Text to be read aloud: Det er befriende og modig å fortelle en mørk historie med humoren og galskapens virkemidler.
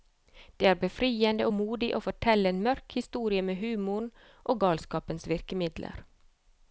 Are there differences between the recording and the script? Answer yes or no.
no